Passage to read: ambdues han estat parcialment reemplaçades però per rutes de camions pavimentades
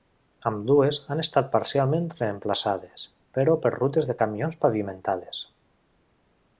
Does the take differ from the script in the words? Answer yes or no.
no